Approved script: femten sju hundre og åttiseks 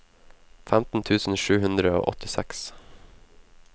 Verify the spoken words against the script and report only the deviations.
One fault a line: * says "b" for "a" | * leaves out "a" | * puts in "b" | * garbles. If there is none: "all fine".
* puts in "tusen"